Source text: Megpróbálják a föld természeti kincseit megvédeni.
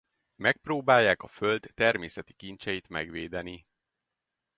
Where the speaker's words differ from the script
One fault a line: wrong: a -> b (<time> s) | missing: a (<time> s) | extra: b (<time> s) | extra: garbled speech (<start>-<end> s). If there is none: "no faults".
no faults